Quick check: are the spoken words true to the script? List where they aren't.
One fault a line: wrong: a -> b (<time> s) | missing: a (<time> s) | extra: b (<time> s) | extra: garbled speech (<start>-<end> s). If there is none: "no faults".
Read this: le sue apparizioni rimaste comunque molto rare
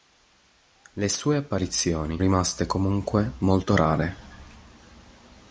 no faults